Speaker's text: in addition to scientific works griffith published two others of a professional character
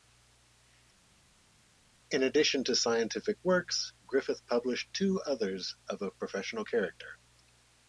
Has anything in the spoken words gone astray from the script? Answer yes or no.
no